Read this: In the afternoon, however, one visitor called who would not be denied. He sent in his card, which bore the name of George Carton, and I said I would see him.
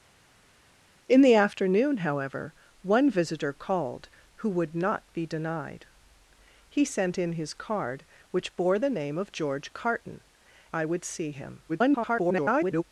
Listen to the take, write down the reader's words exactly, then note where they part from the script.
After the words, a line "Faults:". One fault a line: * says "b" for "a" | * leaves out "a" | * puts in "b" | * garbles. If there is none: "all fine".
In the afternoon, however, one visitor called who would not be denied. He sent in his card, which bore the name of George Carton, I would see him. [garbled]
Faults:
* leaves out "and I said"
* garbles